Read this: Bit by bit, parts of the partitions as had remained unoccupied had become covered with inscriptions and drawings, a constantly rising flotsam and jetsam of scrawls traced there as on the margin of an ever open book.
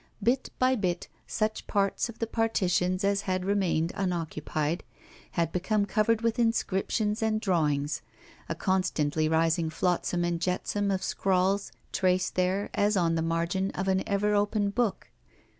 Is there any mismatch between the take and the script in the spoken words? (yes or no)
yes